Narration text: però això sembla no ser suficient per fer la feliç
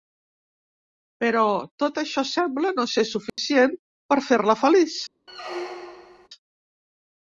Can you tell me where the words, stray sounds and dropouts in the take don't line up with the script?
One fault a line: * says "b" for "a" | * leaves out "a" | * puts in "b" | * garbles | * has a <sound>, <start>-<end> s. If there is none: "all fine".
* puts in "tot"
* has a dropout, 3.3-3.4 s
* has a squeak, 5.3-6.3 s